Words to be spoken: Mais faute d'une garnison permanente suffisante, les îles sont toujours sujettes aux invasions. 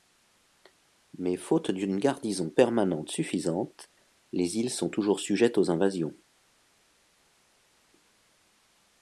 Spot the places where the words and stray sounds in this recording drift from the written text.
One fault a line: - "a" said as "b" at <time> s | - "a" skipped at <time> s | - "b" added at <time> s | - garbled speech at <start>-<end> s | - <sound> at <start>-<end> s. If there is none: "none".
none